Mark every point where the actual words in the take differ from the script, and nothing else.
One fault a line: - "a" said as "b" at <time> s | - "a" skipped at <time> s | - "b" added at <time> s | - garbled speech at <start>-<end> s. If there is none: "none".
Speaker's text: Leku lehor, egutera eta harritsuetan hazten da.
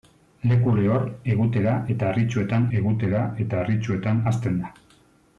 - "egutera eta harritsuetan" added at 2.8 s